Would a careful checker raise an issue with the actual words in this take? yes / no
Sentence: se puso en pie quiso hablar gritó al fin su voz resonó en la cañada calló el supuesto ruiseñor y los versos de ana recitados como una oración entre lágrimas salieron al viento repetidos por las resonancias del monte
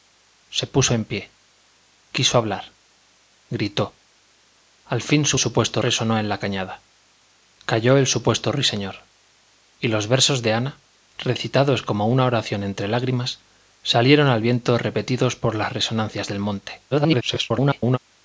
yes